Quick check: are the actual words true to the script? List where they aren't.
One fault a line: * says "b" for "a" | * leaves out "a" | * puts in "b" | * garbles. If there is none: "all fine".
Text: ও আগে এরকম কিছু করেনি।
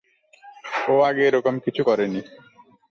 all fine